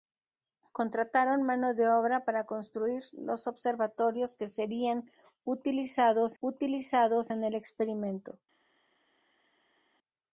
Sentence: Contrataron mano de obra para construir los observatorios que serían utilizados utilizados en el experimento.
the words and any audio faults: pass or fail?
pass